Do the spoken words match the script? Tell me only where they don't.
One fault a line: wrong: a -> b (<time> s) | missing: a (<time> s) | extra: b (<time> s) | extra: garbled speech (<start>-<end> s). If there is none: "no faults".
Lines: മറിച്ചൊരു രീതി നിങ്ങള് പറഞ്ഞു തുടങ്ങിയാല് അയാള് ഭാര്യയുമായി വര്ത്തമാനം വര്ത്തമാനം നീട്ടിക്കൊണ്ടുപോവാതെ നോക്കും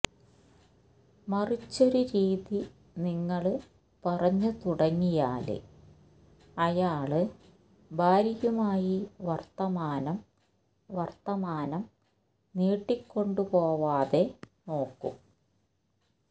no faults